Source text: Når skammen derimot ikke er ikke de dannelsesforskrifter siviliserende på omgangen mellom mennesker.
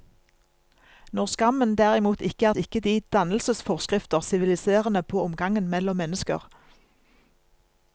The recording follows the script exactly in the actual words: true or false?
true